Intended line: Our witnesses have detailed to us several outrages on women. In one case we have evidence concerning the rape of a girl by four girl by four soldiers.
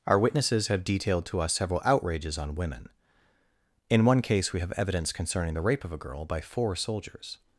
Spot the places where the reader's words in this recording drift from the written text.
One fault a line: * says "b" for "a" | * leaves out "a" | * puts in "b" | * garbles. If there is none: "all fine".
* leaves out "girl by four"